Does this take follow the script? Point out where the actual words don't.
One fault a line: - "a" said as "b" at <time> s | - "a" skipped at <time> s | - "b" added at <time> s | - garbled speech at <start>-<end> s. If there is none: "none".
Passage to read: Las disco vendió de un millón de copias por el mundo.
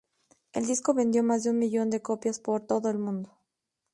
- "Las" said as "El" at 0.5 s
- "más" added at 1.2 s
- "todo" added at 2.7 s